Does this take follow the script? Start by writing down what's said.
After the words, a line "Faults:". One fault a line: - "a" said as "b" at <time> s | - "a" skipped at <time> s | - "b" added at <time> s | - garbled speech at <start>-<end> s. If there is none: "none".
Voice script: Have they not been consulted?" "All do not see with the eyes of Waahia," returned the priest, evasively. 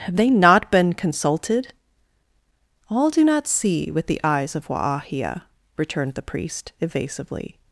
Have they not been consulted?" "All do not see with the eyes of Waahia," returned the priest, evasively.
Faults:
none